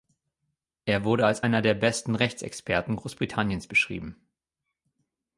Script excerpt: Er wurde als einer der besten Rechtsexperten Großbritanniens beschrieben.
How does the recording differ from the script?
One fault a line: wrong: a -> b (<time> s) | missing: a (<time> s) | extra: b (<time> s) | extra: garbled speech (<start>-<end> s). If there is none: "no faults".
no faults